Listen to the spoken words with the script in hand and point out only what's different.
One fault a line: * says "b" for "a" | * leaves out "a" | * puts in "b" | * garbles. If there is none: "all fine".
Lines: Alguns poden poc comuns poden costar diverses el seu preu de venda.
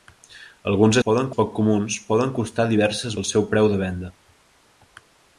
all fine